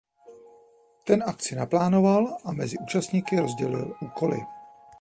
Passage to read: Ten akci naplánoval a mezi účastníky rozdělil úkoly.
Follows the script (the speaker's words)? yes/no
yes